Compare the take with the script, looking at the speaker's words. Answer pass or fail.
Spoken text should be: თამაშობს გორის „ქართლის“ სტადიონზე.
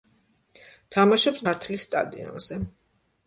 fail